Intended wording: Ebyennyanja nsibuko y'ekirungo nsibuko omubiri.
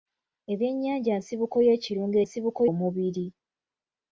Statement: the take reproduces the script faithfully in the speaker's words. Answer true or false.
true